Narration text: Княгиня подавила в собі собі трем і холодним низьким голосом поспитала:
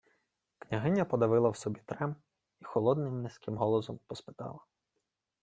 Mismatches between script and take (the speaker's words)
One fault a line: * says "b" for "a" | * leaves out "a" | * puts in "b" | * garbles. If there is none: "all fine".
* leaves out "собі"